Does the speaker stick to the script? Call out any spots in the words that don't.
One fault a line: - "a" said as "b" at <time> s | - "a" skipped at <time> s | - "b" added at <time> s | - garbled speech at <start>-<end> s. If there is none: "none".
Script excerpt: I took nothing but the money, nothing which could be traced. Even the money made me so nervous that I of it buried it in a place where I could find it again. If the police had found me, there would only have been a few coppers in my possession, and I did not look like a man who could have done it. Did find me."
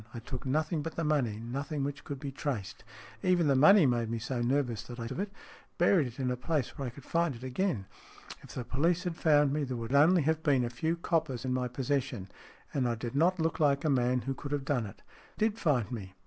none